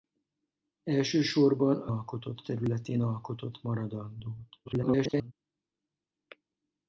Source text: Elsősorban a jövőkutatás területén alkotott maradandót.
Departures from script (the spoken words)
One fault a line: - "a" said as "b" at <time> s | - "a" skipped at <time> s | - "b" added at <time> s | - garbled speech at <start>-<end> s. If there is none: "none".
- "jövőkutatás" said as "alkotott" at 1.9 s
- garbled speech at 4.7-5.3 s